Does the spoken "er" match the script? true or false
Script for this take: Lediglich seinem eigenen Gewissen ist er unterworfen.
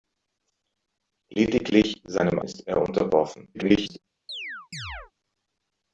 true